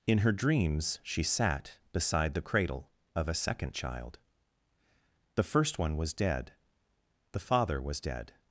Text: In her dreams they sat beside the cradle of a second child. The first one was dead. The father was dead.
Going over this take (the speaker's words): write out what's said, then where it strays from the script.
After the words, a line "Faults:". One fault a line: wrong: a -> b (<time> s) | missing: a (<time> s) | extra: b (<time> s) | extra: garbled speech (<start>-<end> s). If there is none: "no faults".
In her dreams she sat beside the cradle of a second child. The first one was dead. The father was dead.
Faults:
wrong: they -> she (1.0 s)